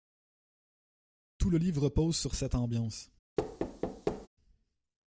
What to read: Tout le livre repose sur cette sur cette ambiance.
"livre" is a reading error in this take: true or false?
false